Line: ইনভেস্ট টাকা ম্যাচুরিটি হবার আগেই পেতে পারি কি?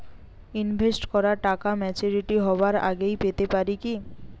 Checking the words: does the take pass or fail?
fail